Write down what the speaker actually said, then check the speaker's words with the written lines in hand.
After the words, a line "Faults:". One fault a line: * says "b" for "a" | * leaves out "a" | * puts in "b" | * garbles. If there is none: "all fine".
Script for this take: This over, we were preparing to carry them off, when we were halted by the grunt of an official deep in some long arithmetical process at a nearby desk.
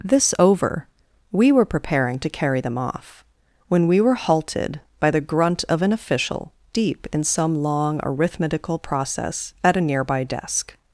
This over, we were preparing to carry them off, when we were halted by the grunt of an official deep in some long arithmetical process at a nearby desk.
Faults:
all fine